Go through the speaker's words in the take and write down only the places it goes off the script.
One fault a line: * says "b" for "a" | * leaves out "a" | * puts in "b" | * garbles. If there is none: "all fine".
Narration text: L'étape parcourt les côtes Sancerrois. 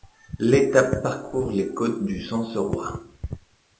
* puts in "du"